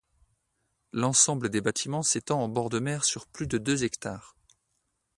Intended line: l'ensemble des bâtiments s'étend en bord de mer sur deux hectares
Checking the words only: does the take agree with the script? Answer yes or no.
no